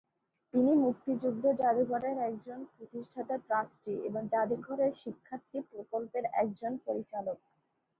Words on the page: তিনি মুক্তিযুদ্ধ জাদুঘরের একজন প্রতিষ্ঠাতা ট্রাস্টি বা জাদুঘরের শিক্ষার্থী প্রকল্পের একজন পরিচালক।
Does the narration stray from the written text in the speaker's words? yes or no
yes